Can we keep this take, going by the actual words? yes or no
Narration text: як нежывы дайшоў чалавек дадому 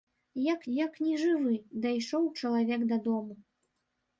no